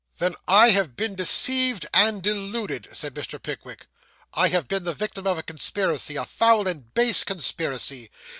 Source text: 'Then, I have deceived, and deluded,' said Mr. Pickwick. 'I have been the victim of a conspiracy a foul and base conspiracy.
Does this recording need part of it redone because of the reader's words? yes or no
yes